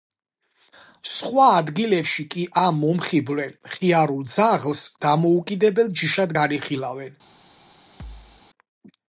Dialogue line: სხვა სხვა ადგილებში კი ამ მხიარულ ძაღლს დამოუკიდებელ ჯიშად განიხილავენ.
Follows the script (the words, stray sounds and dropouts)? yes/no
no